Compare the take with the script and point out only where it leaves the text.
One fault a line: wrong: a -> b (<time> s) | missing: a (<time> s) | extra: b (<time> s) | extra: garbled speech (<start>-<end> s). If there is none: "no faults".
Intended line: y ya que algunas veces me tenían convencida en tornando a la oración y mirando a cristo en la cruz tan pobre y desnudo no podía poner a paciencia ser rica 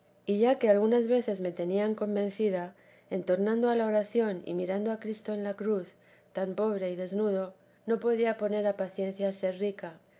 no faults